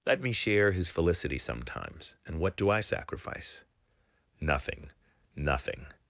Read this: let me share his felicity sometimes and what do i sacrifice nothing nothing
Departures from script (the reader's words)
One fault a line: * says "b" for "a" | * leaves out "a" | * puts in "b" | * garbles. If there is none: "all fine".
all fine